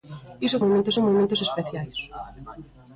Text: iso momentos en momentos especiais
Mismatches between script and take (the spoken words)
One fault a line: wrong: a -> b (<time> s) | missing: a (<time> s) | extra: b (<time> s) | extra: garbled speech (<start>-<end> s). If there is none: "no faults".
no faults